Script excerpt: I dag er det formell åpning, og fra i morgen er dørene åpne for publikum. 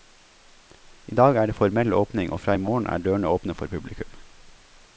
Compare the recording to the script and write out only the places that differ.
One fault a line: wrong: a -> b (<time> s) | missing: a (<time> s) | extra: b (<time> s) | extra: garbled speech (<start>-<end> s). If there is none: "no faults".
no faults